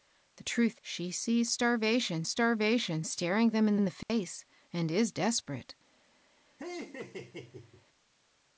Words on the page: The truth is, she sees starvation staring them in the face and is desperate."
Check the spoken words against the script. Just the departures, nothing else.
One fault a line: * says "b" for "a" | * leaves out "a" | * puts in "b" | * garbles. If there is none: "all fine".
* leaves out "is"
* puts in "starvation"
* puts in "in"